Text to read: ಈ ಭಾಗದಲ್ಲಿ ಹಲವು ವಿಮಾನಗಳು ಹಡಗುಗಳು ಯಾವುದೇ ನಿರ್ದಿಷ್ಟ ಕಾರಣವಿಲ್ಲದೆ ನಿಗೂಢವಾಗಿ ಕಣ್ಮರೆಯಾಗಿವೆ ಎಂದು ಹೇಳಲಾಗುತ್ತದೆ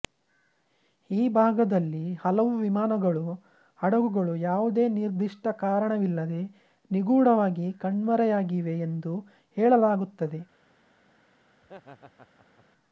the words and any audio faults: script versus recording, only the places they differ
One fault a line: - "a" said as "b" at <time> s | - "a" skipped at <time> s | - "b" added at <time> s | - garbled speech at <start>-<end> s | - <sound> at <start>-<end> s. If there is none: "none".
- laugh at 11.6-12.7 s